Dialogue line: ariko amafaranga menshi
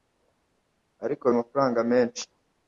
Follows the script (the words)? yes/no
yes